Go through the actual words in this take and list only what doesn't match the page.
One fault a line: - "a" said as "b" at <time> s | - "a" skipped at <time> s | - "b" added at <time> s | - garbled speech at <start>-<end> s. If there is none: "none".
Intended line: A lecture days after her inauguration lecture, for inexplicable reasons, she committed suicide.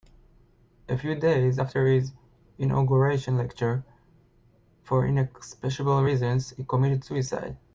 - "lecture" said as "few" at 1.0 s
- "her" said as "his" at 1.9 s
- "she" said as "he" at 6.5 s